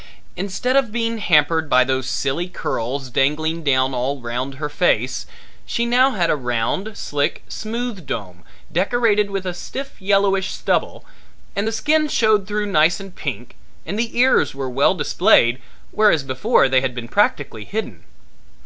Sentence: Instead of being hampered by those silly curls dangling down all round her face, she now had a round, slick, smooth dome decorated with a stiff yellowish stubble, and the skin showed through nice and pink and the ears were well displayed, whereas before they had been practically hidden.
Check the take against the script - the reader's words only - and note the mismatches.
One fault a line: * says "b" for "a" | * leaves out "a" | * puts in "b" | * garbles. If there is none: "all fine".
all fine